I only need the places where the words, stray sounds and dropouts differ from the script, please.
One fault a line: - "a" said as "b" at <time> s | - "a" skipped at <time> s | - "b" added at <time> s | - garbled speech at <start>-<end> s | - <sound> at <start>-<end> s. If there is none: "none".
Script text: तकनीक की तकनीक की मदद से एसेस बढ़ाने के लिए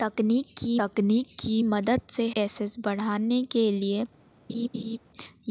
- laugh at 4.5-5.0 s